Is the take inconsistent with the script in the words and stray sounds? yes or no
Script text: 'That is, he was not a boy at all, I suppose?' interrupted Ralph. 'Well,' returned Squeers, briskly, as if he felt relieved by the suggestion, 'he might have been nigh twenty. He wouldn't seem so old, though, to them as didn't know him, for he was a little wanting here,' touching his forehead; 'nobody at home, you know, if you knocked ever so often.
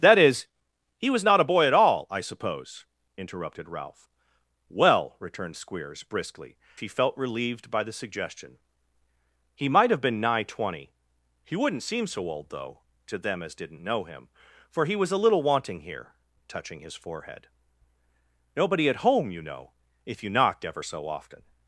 yes